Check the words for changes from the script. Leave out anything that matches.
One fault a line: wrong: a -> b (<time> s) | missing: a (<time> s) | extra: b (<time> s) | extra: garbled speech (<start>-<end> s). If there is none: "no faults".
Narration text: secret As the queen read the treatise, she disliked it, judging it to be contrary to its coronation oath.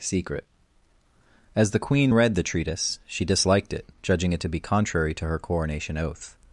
wrong: its -> her (5.2 s)